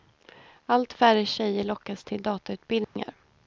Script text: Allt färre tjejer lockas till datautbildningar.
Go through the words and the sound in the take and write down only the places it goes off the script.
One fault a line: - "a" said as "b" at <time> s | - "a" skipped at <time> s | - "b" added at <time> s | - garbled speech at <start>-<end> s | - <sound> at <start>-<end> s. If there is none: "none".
- dropout at 2.8-3.0 s